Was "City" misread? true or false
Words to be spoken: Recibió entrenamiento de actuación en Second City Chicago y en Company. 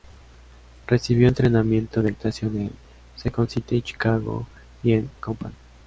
false